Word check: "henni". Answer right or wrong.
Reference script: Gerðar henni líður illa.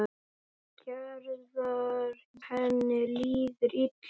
right